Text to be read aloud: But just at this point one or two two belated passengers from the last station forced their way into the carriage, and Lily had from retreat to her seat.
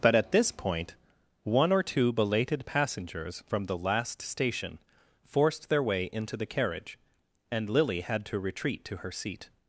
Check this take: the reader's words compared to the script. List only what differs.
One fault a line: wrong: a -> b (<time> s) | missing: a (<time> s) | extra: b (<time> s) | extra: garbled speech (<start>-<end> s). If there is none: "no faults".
missing: just (0.1 s)
missing: two (2.1 s)
wrong: from -> to (8.3 s)